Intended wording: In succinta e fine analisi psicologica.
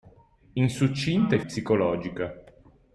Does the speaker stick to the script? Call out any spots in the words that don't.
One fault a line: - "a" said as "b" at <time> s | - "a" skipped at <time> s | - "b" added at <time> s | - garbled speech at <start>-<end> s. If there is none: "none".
- "fine analisi" skipped at 1.4 s